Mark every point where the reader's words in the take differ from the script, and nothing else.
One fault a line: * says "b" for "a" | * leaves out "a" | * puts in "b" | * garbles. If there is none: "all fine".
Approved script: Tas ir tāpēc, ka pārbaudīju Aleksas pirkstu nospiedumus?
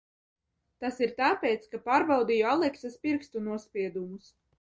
all fine